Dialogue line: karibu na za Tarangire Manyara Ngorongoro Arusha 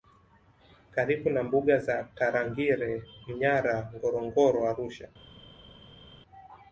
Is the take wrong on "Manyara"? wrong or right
right